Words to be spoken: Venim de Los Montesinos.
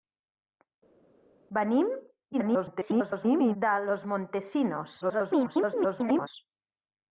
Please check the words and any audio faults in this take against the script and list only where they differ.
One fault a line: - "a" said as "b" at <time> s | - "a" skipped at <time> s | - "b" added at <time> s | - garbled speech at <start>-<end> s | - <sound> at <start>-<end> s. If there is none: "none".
- garbled speech at 2.3-3.6 s
- garbled speech at 5.0-6.3 s